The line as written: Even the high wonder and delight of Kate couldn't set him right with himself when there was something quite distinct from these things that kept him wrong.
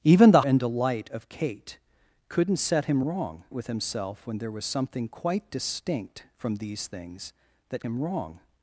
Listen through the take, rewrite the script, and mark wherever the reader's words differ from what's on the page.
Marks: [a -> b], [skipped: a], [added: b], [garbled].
Even the [skipped: high wonder] and delight of Kate couldn't set him [right -> wrong] with himself when there was something quite distinct from these things that [skipped: kept] him wrong.